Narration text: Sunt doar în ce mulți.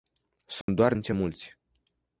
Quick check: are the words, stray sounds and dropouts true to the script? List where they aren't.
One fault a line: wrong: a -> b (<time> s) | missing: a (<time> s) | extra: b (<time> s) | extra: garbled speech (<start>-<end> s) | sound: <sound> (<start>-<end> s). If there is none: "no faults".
sound: dropout (0.6-0.7 s)